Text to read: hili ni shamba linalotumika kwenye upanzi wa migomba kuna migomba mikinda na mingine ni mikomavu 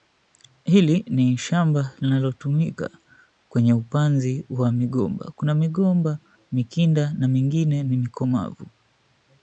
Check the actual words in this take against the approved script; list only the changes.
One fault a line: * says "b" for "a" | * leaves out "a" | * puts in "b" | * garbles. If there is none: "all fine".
all fine